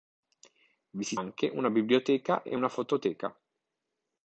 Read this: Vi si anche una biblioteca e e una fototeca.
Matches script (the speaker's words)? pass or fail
pass